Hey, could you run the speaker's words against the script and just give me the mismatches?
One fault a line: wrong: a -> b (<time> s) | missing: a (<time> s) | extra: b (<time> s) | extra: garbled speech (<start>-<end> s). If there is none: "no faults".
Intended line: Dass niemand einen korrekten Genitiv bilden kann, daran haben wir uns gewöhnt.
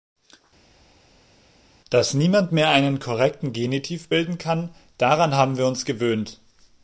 extra: mehr (2.5 s)